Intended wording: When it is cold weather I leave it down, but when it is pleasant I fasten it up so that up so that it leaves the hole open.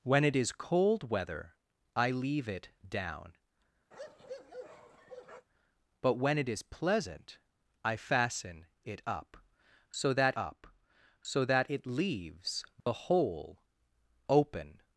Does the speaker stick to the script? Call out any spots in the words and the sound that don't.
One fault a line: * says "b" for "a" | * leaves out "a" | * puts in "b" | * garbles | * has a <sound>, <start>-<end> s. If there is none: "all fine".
* has a bark, 3.9-5.5 s
* has a dropout, 12.8-12.9 s